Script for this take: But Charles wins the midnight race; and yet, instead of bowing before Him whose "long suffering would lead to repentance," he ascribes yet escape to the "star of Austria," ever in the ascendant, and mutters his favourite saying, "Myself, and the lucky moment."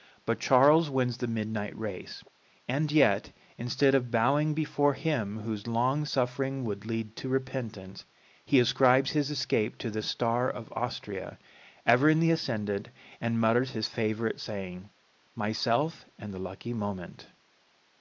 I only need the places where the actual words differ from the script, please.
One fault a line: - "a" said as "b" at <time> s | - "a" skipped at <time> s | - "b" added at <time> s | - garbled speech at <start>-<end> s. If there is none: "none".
- "yet" said as "his" at 9.1 s